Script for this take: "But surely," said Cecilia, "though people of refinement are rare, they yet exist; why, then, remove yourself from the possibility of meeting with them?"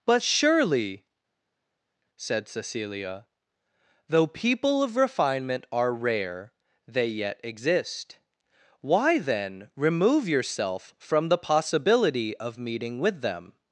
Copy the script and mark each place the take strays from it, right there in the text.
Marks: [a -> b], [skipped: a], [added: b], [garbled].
"But surely," said Cecilia, "though people of refinement are rare, they yet exist; why, then, remove yourself from the possibility of meeting with them?"